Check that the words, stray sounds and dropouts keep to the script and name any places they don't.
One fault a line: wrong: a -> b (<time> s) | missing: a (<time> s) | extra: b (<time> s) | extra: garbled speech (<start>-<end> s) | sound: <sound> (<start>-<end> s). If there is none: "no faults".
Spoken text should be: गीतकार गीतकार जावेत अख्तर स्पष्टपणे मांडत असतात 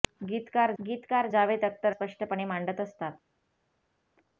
no faults